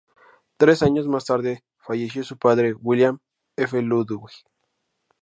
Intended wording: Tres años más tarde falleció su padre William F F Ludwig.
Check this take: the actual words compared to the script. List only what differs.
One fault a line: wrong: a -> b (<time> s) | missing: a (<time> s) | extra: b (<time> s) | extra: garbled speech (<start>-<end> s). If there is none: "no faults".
missing: F (3.8 s)